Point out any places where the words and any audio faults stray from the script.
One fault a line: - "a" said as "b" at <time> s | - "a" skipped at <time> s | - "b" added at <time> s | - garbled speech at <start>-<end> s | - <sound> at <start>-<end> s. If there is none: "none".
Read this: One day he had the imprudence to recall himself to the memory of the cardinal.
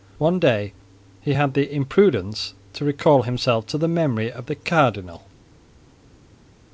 none